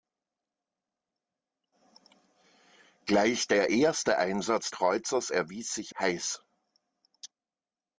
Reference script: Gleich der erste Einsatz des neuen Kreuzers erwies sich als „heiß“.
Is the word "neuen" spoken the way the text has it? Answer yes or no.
no